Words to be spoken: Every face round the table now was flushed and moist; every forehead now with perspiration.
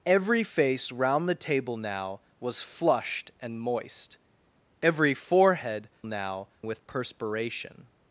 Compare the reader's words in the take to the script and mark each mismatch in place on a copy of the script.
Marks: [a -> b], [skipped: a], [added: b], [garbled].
Every face round the table now was flushed and moist; every forehead now with perspiration.